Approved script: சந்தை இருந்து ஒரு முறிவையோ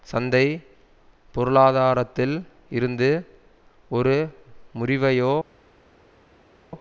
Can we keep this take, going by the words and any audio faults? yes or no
no